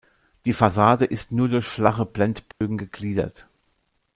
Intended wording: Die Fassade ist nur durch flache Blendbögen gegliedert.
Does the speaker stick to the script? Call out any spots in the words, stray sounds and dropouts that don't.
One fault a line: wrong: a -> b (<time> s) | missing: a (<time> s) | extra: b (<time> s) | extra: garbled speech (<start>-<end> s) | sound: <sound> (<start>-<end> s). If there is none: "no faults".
sound: dropout (2.5-2.6 s)